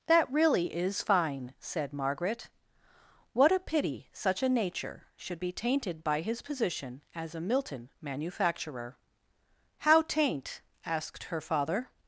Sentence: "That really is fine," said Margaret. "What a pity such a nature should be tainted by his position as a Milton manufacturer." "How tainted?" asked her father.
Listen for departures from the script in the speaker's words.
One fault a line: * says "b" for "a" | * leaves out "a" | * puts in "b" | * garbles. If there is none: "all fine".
* says "taint" for "tainted"